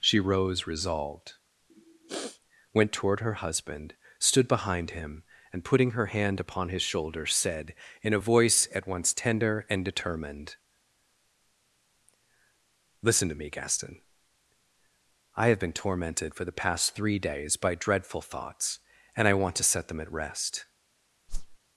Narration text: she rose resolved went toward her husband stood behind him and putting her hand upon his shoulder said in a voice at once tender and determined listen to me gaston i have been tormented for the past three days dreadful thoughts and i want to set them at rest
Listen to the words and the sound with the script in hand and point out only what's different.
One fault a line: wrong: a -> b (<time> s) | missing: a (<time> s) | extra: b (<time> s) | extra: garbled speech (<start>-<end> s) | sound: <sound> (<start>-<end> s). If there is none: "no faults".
sound: sniff (1.7-2.4 s)
extra: by (17.5 s)
sound: whoosh (21.3-21.6 s)